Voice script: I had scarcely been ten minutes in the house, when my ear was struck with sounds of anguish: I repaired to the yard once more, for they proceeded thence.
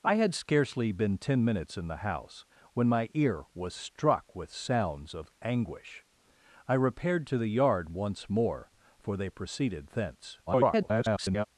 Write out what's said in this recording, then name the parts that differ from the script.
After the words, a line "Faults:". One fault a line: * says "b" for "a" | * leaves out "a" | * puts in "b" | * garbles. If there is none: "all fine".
I had scarcely been ten minutes in the house, when my ear was struck with sounds of anguish: I repaired to the yard once more, for they proceeded thence. [garbled]
Faults:
* garbles